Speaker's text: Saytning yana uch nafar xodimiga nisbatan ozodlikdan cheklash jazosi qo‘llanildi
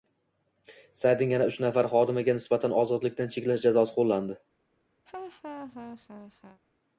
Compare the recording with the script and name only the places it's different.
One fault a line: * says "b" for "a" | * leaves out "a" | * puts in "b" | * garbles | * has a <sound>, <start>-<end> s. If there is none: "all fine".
* has a laugh, 5.1-6.6 s